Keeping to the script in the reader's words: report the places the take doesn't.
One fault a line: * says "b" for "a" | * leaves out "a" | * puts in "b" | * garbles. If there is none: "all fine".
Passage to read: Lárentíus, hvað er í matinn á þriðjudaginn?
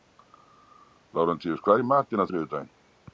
all fine